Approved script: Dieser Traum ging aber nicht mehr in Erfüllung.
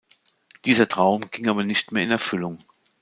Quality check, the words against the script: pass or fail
pass